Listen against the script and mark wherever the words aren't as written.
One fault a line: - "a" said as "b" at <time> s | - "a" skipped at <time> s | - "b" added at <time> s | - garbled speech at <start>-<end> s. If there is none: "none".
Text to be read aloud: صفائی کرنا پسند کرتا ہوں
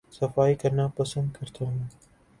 none